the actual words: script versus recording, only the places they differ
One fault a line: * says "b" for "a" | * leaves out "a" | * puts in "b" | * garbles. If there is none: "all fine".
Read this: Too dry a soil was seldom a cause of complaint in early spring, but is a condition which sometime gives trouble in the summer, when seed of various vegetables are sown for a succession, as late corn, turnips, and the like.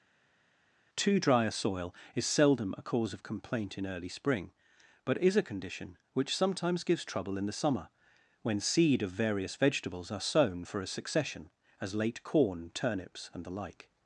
* says "is" for "was"
* says "sometimes" for "sometime"